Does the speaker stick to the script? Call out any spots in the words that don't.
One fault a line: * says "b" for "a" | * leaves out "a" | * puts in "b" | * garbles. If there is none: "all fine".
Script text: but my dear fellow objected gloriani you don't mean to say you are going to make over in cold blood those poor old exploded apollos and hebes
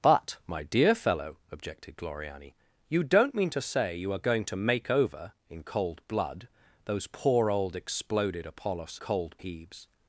* says "cold" for "and"